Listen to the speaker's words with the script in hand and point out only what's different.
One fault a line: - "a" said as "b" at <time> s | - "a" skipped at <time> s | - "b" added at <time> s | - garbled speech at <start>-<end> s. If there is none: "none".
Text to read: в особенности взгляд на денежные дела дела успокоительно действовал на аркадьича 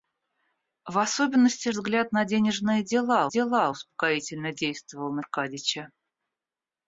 none